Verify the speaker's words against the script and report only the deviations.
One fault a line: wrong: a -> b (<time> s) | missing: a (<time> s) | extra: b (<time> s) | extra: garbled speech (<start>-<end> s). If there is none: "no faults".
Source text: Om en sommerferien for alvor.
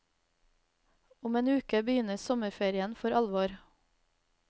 extra: uke begynner (1.5 s)